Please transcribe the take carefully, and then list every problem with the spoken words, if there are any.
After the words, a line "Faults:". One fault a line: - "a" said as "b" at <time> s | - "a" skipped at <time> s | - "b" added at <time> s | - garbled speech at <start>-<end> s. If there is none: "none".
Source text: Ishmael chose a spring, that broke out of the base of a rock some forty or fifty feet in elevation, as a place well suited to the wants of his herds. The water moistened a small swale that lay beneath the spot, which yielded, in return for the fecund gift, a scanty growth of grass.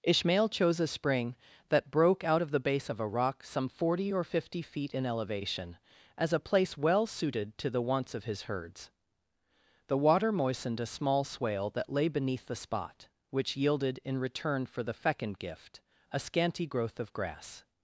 Ishmael chose a spring, that broke out of the base of a rock some forty or fifty feet in elevation, as a place well suited to the wants of his herds. The water moistened a small swale that lay beneath the spot, which yielded, in return for the fecund gift, a scanty growth of grass.
Faults:
none